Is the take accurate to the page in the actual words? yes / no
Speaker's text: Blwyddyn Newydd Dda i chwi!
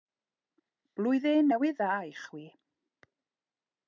yes